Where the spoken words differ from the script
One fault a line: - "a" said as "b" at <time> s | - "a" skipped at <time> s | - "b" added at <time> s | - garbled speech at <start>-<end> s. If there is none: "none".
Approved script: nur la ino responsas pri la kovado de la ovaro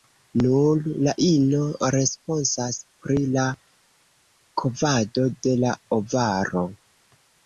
none